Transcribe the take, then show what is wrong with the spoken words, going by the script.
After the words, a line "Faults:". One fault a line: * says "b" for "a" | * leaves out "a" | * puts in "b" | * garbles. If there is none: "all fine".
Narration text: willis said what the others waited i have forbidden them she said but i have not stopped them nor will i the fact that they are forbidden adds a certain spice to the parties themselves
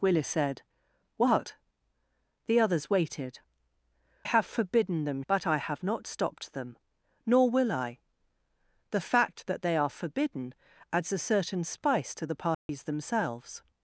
willis said what the others waited have forbidden them but i have not stopped them nor will i the fact that they are forbidden adds a certain spice to the parties themselves
Faults:
* leaves out "i"
* leaves out "she said"